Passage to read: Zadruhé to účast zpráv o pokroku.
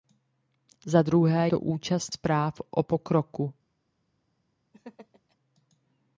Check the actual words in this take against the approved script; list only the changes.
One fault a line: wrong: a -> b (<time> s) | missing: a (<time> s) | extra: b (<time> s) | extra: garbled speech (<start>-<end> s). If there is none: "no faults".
no faults